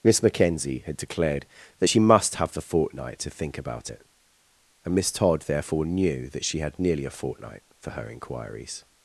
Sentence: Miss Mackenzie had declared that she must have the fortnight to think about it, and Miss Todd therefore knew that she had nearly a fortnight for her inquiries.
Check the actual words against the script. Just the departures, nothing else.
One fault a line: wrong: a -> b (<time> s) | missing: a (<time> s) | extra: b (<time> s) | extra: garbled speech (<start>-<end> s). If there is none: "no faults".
no faults